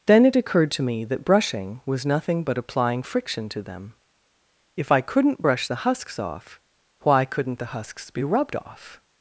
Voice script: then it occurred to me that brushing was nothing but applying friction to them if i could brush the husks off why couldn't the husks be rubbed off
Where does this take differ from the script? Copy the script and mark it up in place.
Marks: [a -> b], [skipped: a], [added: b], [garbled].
then it occurred to me that brushing was nothing but applying friction to them if i [could -> couldn't] brush the husks off why couldn't the husks be rubbed off